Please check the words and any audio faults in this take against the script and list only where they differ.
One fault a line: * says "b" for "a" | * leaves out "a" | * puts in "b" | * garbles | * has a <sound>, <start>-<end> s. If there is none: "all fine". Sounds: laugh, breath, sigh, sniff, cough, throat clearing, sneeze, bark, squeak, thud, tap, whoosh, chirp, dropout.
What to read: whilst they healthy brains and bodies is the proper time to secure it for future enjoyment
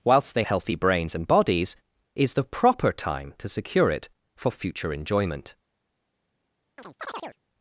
* has a chirp, 6.8-7.4 s